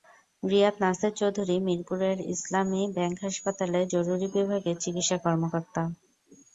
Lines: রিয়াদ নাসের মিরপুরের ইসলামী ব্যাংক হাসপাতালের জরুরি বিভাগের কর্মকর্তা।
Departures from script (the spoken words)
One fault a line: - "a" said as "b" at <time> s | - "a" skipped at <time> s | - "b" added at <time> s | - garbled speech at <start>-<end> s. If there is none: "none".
- "চৌধুরী" added at 1.2 s
- "চিকিৎসা" added at 4.8 s